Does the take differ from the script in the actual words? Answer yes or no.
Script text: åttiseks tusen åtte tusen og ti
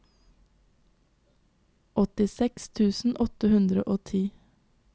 yes